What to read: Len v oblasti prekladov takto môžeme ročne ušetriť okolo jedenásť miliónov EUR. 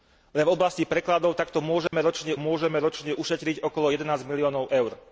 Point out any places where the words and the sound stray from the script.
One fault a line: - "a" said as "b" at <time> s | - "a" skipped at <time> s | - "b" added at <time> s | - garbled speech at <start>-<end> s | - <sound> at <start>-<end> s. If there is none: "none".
- dropout at 1.9-1.9 s
- "môžeme ročne" added at 2.4 s